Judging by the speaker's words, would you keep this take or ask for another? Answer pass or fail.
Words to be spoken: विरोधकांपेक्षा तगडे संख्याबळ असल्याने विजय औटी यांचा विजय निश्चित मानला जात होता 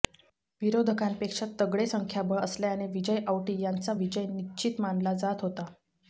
pass